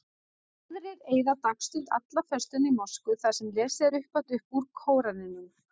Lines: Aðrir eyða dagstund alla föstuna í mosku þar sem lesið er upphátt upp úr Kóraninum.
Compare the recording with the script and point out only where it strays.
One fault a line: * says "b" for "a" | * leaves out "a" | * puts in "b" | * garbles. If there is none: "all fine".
all fine